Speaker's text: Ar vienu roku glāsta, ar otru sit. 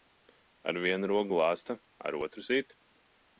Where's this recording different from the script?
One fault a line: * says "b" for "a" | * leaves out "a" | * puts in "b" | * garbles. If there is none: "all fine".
all fine